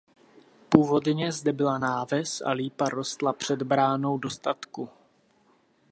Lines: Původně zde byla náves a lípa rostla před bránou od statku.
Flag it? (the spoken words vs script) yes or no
yes